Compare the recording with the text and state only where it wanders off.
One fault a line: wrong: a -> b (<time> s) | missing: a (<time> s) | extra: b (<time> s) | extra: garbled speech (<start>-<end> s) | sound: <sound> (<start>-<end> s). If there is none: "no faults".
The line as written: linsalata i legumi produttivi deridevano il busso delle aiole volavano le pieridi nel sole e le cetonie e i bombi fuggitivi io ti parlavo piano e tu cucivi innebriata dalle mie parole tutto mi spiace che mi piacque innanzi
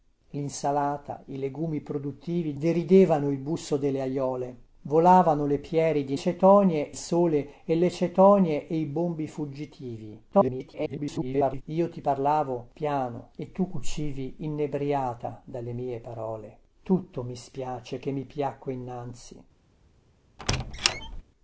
wrong: nel -> cetonie (6.1 s)
extra: garbled speech (10.3-11.6 s)
sound: squeak (20.4-21.2 s)